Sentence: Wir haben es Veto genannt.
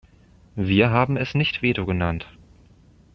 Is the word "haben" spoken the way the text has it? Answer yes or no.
yes